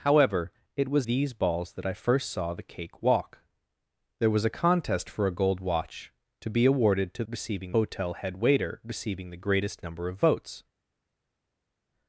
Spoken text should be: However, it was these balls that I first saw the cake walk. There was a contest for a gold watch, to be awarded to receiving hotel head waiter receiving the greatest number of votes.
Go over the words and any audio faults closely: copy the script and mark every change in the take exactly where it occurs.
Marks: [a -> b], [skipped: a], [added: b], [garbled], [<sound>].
However, it was these balls that I first saw the cake walk. There was a contest for a gold watch, to be awarded to receiving hotel head waiter receiving the greatest number of votes.